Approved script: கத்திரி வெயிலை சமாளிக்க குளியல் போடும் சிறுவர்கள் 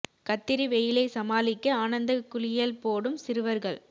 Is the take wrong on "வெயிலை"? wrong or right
right